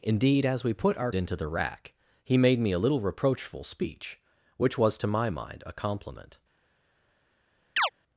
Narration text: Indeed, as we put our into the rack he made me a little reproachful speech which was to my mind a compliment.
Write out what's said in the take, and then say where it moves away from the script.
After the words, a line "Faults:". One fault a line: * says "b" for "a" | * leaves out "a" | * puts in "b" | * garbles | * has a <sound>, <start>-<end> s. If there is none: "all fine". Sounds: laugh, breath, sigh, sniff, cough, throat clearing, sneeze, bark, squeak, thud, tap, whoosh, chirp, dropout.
Indeed, as we put our into the rack he made me a little reproachful speech which was to my mind a compliment.
Faults:
* has a chirp, 7.8-7.9 s